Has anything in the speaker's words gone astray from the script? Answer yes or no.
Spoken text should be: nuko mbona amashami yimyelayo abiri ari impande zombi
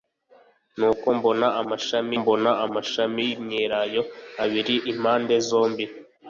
yes